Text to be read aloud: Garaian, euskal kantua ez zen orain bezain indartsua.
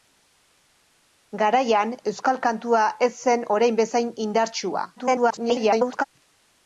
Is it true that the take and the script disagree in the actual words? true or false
true